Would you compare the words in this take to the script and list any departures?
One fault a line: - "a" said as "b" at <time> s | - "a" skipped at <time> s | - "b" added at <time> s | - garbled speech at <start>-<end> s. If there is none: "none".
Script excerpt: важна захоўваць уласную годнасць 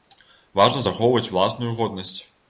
none